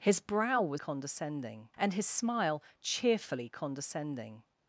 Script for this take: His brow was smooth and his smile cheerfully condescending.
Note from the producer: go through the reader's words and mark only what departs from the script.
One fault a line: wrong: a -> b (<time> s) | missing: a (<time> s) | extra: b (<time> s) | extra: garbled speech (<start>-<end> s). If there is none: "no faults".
wrong: smooth -> condescending (0.8 s)